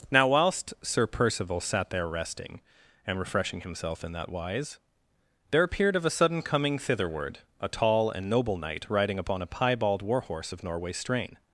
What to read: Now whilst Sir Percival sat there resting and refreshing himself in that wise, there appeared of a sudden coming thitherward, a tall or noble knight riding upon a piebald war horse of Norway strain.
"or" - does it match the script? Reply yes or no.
no